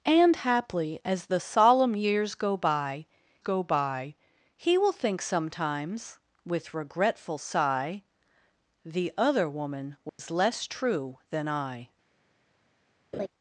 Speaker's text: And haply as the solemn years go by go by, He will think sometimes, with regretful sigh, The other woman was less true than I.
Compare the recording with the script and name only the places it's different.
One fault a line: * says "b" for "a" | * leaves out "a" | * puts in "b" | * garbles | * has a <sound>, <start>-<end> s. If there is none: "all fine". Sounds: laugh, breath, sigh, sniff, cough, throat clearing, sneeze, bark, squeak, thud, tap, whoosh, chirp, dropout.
* has a dropout, 10.1-10.2 s
* has a laugh, 13.1-13.3 s